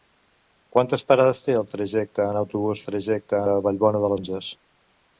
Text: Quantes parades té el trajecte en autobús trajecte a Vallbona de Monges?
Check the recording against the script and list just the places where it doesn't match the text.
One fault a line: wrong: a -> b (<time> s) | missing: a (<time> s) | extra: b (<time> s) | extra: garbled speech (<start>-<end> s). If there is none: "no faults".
no faults